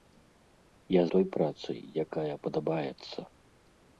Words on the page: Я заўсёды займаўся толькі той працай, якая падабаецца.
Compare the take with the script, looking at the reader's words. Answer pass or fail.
fail